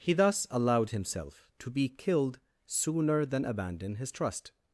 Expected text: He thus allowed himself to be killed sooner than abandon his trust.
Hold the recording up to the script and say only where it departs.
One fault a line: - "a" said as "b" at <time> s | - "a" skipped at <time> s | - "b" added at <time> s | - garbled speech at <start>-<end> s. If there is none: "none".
none